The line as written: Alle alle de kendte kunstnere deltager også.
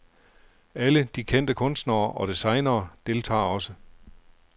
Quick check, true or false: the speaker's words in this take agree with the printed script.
false